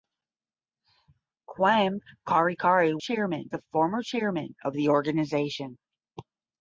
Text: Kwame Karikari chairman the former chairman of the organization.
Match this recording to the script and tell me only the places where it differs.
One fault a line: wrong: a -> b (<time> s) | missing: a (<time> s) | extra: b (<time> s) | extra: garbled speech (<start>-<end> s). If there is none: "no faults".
no faults